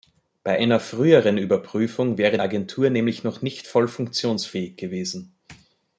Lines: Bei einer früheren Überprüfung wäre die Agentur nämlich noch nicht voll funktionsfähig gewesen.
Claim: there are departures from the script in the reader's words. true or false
true